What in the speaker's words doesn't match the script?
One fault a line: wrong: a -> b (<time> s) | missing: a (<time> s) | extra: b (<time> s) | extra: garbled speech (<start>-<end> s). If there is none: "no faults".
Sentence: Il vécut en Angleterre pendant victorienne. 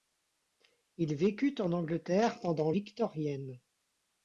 no faults